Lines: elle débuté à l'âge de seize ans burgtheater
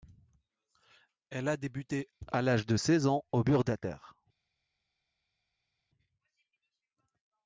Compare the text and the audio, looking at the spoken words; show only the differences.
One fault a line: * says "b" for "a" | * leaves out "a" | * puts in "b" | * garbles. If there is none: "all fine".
* puts in "a"
* puts in "au"